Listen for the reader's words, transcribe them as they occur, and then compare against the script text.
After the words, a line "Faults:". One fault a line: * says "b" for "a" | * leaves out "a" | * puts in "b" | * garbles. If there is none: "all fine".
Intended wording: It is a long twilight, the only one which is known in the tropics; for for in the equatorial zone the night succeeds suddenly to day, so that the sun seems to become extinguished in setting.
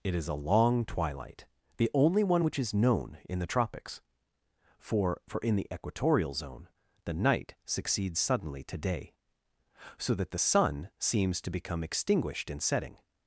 It is a long twilight, the only one which is known in the tropics; for for in the equatorial zone the night succeeds suddenly to day, so that the sun seems to become extinguished in setting.
Faults:
all fine